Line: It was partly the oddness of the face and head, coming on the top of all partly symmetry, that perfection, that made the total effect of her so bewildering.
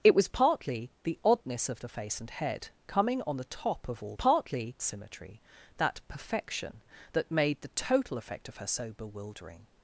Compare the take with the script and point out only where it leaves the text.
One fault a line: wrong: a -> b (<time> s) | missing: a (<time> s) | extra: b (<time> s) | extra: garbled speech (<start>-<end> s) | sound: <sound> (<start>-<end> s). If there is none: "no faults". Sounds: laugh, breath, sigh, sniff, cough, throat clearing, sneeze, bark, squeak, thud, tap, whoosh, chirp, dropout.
no faults